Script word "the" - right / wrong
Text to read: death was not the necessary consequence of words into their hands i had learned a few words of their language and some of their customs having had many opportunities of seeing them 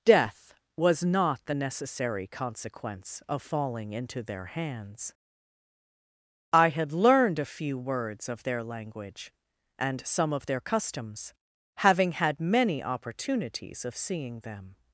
right